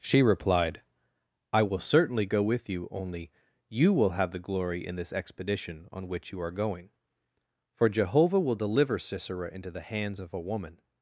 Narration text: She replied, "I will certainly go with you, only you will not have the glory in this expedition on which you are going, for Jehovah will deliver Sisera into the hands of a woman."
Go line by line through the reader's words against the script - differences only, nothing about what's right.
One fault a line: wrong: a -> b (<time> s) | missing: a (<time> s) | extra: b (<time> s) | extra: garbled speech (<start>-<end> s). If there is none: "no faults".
missing: not (4.1 s)